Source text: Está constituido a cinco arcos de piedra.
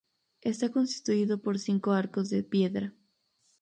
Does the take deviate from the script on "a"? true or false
true